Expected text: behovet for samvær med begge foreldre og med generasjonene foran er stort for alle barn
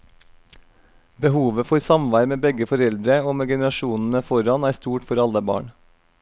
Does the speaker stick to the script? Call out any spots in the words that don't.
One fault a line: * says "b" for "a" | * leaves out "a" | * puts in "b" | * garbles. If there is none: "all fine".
all fine